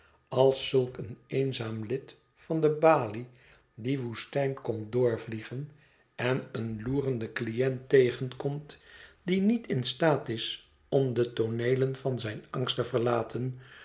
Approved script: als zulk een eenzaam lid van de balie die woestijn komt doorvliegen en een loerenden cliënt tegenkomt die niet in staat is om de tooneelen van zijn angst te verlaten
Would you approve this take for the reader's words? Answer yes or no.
yes